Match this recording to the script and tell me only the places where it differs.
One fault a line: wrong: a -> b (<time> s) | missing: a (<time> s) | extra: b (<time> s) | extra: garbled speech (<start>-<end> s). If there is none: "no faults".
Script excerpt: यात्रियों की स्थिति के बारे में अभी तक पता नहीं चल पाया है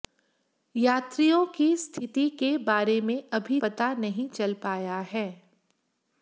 missing: तक (3.6 s)